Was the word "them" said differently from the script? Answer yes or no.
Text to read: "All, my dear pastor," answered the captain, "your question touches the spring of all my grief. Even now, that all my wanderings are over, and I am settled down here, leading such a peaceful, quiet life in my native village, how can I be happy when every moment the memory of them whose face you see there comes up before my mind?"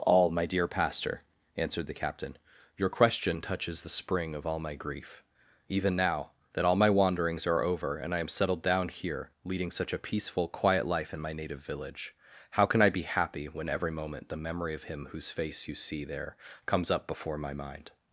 yes